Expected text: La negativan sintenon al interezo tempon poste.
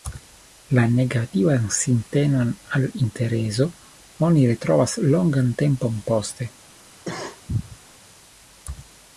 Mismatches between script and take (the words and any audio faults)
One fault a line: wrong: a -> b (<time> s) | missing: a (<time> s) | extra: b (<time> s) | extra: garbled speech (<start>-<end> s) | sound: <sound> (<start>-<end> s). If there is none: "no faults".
extra: oni retrovas longan (4.3 s)
sound: cough (7.0-7.8 s)